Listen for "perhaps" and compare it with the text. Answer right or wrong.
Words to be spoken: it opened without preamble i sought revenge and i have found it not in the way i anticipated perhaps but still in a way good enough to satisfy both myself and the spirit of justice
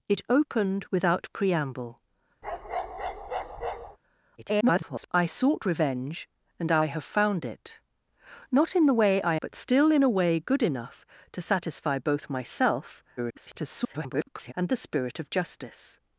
wrong